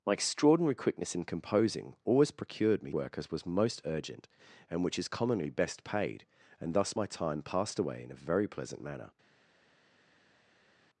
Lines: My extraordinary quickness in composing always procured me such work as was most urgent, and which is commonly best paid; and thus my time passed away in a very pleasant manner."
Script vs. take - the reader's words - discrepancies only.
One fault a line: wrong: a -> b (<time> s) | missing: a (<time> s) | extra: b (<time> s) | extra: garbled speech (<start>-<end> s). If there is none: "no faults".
missing: such (2.9 s)